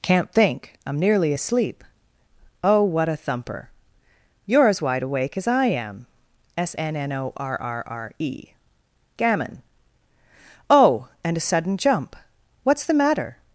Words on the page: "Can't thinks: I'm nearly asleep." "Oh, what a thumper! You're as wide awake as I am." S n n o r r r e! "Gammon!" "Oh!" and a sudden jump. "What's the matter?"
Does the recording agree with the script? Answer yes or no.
no